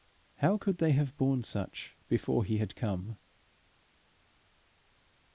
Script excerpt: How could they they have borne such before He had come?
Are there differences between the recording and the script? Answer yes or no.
yes